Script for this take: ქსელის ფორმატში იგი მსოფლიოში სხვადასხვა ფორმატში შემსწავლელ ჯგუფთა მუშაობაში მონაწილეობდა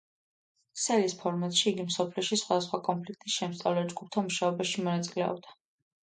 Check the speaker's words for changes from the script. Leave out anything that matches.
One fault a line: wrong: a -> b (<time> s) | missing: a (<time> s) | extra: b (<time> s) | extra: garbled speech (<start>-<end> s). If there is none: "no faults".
wrong: ფორმატში -> კონფლიქტის (2.9 s)